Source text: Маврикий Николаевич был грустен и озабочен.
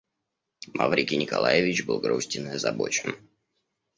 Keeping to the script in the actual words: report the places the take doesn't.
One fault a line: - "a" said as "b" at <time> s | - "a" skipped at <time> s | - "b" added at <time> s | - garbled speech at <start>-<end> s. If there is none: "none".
none